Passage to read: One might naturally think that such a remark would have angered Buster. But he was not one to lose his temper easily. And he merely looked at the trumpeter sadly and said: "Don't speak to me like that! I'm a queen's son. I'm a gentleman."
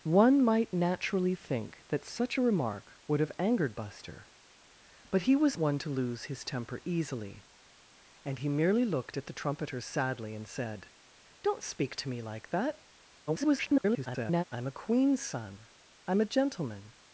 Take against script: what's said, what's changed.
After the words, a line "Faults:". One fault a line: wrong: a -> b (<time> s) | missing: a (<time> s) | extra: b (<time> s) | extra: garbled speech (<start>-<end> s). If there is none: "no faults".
One might naturally think that such a remark would have angered Buster. But he was one to lose his temper easily. And he merely looked at the trumpeter sadly and said: "Don't speak to me like that! [garbled] I'm a queen's son. I'm a gentleman."
Faults:
missing: not (5.6 s)
extra: garbled speech (13.3-14.4 s)